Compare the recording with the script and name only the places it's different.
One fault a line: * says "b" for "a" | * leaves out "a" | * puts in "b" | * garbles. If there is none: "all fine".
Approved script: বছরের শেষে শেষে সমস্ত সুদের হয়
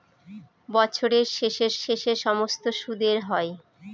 all fine